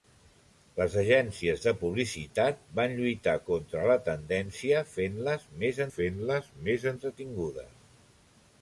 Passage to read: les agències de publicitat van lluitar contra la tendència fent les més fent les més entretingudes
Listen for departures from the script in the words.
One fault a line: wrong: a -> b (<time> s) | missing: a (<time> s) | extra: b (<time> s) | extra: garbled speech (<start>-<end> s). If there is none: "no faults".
no faults